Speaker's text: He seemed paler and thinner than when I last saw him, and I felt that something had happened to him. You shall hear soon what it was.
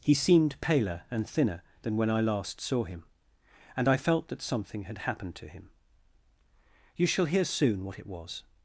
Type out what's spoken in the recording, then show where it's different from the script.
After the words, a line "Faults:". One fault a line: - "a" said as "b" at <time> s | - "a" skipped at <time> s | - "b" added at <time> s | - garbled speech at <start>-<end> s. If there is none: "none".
He seemed paler and thinner than when I last saw him, and I felt that something had happened to him. You shall hear soon what it was.
Faults:
none